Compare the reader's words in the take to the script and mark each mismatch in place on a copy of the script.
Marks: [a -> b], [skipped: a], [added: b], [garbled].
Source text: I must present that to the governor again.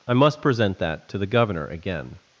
I must present that to the governor again.